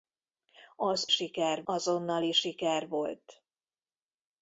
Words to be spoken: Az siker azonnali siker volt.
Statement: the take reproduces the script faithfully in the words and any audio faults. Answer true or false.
true